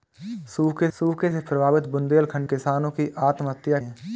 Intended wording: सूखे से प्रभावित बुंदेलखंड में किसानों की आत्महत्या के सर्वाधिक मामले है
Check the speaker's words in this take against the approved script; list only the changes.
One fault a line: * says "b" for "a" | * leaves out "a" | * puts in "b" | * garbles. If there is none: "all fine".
* puts in "सूखे"
* leaves out "में"
* leaves out "के सर्वाधिक मामले"